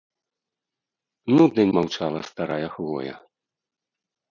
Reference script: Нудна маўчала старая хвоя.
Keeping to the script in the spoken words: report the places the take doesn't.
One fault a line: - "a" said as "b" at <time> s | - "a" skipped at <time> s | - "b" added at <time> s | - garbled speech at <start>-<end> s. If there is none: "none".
none